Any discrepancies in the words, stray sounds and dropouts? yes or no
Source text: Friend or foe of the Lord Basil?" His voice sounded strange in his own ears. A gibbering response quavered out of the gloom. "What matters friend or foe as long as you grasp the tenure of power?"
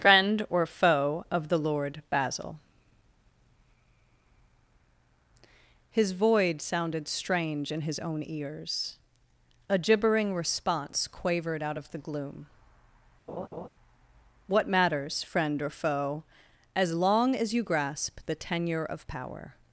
yes